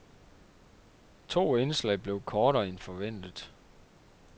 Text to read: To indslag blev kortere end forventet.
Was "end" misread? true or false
false